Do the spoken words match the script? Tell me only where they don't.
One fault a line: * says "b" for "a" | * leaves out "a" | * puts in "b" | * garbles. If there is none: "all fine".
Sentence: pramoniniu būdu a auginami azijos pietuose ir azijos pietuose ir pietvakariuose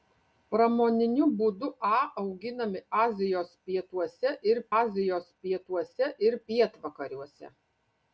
all fine